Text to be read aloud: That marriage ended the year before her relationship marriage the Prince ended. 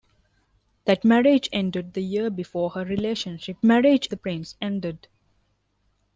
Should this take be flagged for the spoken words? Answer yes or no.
no